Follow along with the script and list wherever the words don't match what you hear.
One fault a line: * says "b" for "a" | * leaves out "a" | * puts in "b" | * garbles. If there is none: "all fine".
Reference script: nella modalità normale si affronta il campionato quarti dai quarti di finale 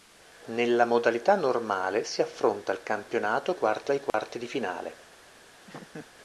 all fine